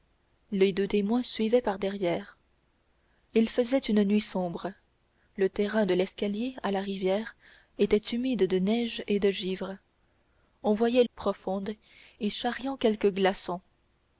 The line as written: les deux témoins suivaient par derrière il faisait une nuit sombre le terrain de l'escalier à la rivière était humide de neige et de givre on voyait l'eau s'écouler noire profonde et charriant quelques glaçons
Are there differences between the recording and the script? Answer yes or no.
yes